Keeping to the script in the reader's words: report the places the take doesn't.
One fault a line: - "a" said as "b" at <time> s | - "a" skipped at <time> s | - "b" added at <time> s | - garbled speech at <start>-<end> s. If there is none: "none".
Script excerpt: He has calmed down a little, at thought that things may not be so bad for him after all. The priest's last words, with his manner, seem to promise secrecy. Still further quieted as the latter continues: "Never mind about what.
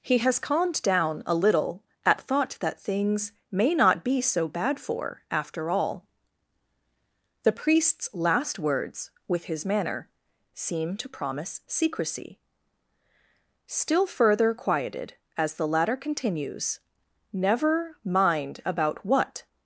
- "him" skipped at 5.2 s